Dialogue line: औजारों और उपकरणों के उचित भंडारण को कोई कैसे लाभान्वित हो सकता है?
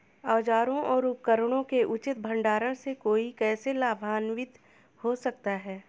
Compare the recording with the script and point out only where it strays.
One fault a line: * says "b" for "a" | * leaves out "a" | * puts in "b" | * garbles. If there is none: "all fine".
* says "से" for "को"